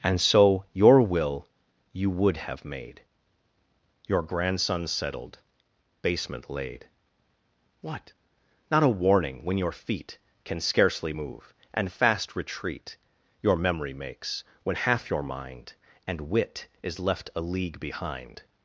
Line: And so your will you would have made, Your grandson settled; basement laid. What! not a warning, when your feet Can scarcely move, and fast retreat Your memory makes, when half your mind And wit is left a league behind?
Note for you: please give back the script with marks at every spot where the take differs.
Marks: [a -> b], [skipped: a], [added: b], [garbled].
And so your will you would have made, Your grandson settled; basement laid. What! not a warning, when your feet Can scarcely move, and fast retreat Your memory makes, when half your mind And wit is left a league behind?